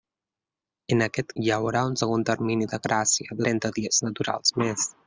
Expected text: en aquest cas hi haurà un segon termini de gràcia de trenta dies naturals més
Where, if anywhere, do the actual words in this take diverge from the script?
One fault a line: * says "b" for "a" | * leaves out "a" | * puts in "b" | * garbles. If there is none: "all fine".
* leaves out "cas"
* leaves out "de"